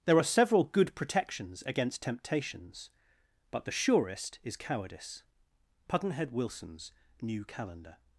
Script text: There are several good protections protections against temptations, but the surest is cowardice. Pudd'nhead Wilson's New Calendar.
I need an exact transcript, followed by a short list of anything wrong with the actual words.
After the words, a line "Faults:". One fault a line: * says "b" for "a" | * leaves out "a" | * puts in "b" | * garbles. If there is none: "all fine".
There are several good protections against temptations, but the surest is cowardice. Pudd'nhead Wilson's New Calendar.
Faults:
* leaves out "protections"